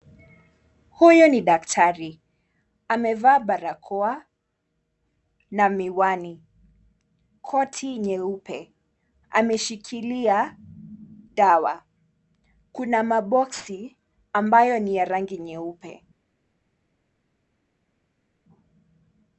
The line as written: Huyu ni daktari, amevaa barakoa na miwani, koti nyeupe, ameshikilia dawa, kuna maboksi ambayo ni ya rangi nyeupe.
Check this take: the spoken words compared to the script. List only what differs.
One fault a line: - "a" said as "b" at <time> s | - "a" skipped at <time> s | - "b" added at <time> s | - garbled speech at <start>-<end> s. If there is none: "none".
none